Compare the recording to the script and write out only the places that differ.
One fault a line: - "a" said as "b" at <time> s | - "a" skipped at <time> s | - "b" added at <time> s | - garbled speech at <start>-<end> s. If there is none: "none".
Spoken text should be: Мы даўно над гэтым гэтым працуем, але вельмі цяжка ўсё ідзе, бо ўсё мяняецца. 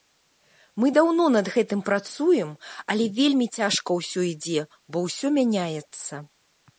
- "гэтым" skipped at 1.8 s